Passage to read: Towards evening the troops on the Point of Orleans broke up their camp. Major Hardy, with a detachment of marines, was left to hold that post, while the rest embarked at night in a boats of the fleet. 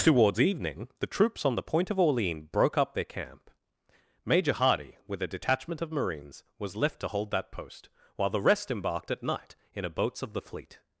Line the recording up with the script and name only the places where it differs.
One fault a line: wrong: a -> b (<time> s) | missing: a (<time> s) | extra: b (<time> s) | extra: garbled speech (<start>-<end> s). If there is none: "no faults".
no faults